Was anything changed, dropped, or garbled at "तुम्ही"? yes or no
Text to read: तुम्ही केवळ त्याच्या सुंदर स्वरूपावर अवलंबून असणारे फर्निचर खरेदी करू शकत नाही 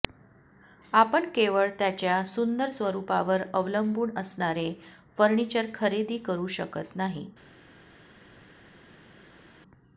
yes